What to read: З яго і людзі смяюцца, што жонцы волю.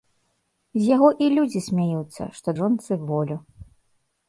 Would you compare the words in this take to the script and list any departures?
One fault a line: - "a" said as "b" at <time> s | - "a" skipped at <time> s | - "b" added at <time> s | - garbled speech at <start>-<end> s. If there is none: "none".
none